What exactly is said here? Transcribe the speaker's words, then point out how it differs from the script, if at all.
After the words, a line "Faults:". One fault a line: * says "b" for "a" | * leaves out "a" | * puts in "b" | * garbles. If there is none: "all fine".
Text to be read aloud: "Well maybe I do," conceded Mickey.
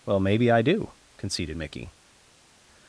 "Well maybe I do," conceded Mickey.
Faults:
all fine